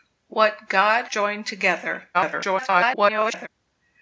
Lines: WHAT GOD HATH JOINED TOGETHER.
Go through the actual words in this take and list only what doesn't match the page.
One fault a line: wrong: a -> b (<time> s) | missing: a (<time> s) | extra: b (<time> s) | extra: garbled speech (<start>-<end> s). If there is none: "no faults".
missing: HATH (1.1 s)
extra: garbled speech (2.1-3.5 s)